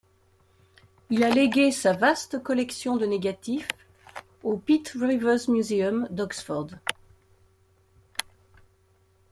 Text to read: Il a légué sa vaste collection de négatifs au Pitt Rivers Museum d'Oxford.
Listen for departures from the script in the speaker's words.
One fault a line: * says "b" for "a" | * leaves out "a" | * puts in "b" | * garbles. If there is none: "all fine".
all fine